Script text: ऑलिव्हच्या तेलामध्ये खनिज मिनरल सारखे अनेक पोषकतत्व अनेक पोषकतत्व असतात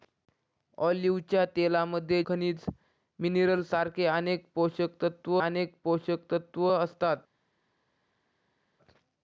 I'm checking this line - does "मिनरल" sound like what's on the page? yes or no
yes